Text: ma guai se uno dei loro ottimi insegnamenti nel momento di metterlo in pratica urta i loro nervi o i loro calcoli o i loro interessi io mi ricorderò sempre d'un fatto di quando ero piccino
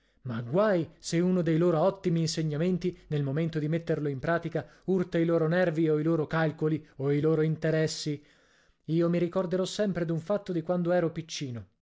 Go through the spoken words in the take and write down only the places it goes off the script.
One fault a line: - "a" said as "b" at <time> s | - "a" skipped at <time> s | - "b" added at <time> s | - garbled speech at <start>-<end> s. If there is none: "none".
none